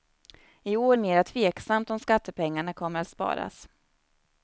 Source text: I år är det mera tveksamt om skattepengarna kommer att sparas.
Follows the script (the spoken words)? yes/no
no